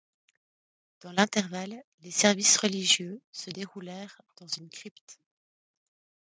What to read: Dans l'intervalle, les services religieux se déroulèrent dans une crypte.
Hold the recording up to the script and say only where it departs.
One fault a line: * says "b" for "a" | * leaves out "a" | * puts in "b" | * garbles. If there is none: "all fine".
all fine